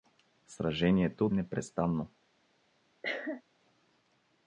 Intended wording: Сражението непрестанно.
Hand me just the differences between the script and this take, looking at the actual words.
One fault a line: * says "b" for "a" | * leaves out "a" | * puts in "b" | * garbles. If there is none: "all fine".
all fine